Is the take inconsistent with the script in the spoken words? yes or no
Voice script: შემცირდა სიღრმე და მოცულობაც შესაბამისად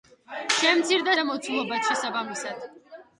yes